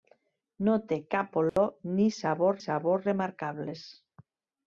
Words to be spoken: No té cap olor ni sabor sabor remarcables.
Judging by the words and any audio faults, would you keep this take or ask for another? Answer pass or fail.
fail